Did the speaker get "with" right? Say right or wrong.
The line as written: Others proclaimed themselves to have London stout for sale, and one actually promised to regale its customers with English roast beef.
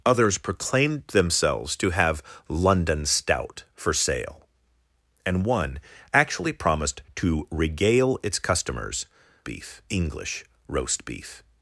wrong